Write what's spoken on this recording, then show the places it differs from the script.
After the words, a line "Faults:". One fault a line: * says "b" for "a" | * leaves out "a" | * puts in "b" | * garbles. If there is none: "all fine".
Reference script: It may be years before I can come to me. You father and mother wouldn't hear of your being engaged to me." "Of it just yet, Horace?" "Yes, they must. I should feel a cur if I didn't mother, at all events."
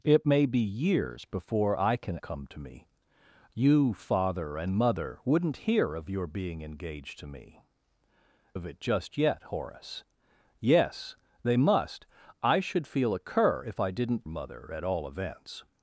It may be years before I can come to me. You father and mother wouldn't hear of your being engaged to me." "Of it just yet, Horace?" "Yes, they must. I should feel a cur if I didn't mother, at all events."
Faults:
all fine